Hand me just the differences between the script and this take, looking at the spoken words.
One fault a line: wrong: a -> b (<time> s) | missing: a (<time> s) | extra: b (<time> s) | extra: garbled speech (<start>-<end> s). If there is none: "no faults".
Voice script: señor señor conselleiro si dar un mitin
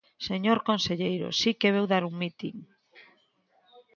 missing: señor (0.6 s)
extra: que veu (1.6 s)